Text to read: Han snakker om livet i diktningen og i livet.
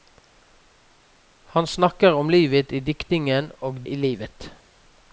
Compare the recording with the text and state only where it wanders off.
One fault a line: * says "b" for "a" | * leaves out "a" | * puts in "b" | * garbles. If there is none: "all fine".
all fine